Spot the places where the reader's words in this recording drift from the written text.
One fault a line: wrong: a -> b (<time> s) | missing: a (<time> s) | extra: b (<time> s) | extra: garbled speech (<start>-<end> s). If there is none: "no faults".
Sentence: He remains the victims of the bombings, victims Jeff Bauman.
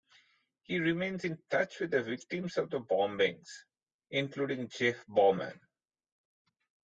extra: in touch with (1.2 s)
wrong: victims -> including (4.1 s)